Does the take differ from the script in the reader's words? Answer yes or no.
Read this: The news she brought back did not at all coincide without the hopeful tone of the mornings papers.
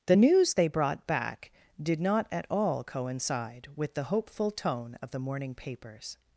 yes